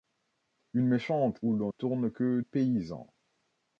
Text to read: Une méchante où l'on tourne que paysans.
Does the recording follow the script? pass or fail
pass